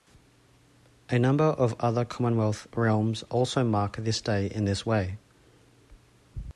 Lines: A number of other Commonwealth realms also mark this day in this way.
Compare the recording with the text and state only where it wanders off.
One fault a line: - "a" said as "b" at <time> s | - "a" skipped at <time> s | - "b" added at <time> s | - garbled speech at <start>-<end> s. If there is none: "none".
none